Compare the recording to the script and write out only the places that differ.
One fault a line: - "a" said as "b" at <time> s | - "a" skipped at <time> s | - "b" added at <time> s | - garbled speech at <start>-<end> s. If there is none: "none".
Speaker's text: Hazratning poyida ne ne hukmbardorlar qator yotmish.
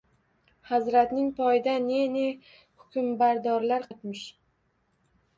- "qator" skipped at 3.9 s